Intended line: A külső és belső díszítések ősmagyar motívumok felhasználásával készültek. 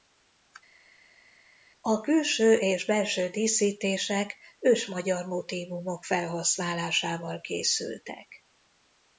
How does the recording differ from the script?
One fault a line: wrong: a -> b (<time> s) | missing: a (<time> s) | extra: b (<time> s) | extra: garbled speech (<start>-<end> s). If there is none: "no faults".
no faults